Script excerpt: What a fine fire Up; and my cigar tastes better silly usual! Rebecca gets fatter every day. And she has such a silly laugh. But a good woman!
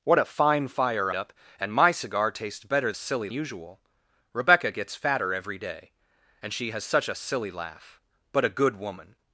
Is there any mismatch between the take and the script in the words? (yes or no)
no